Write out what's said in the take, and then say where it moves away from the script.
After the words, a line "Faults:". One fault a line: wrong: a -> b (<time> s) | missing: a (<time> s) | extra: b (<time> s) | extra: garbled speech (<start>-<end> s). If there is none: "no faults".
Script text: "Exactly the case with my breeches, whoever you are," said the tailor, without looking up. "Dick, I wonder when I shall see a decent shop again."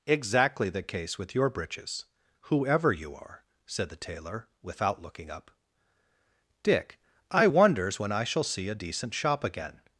"Exactly the case with your breeches, whoever you are," said the tailor, without looking up. "Dick, I wonders when I shall see a decent shop again."
Faults:
wrong: my -> your (1.4 s)
wrong: wonder -> wonders (7.5 s)